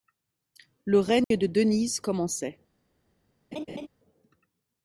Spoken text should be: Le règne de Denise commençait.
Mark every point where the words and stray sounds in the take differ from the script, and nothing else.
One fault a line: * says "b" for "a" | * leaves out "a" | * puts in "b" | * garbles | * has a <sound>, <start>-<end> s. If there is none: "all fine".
* has a dropout, 1.2-1.3 s
* has a laugh, 3.5-3.9 s